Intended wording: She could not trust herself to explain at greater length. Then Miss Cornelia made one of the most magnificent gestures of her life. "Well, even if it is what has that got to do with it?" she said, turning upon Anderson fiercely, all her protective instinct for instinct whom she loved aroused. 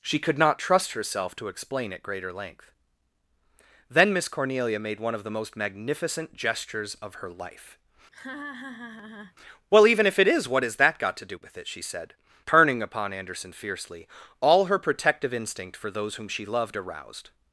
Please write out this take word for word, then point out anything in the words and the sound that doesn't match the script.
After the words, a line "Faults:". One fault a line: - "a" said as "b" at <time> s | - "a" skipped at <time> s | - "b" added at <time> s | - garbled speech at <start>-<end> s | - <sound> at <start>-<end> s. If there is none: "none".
She could not trust herself to explain at greater length. Then Miss Cornelia made one of the most magnificent gestures of her life. "Well, even if it is what has that got to do with it?" she said, turning upon Anderson fiercely, all her protective instinct for those whom she loved aroused.
Faults:
- laugh at 8.1-9.4 s
- "instinct" said as "those" at 15.9 s